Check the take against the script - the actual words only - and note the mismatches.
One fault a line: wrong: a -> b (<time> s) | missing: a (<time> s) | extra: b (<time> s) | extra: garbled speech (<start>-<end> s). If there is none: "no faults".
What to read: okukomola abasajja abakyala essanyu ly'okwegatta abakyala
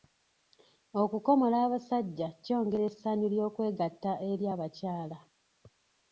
wrong: abakyala -> kyongera (2.4 s)
extra: eri (4.3 s)